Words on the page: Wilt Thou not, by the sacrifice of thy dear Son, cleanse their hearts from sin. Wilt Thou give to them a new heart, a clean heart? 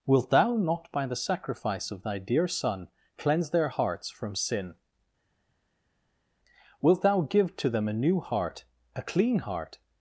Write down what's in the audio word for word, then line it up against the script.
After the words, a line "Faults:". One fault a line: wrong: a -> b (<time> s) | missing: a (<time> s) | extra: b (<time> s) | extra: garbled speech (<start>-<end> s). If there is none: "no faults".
Wilt Thou not, by the sacrifice of thy dear Son, cleanse their hearts from sin. Wilt Thou give to them a new heart, a clean heart?
Faults:
no faults